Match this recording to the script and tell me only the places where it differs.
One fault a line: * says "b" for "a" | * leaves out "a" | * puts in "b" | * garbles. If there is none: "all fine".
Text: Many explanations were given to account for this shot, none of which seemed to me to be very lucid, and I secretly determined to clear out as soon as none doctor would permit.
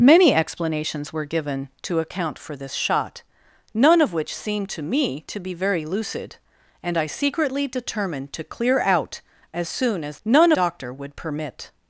all fine